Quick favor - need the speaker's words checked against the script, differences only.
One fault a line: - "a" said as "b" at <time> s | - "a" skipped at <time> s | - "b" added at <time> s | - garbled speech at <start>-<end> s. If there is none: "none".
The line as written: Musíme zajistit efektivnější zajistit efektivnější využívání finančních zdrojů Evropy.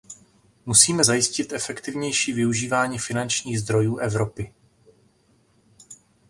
- "zajistit efektivnější" skipped at 2.3 s